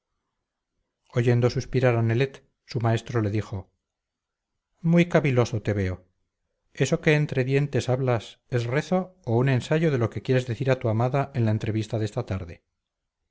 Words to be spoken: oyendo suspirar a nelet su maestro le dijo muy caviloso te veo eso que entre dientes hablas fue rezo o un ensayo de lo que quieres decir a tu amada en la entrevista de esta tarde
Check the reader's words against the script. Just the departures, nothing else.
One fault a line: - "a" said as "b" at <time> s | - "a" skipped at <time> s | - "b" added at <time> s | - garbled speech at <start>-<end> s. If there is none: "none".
- "fue" said as "es" at 8.5 s